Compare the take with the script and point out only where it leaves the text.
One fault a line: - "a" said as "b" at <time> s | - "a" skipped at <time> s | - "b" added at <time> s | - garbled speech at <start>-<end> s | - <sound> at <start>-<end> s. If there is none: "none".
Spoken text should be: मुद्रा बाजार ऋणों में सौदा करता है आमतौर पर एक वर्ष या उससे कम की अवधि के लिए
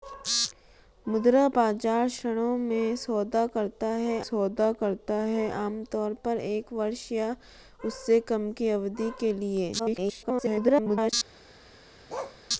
- "सौदा करता है" added at 4.2 s
- garbled speech at 9.8-11.1 s
- bark at 12.1-12.4 s